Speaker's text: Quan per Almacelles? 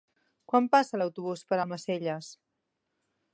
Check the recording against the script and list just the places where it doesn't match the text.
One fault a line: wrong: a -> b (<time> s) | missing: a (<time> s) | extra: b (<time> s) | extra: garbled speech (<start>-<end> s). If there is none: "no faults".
extra: passa l'autobús (0.8 s)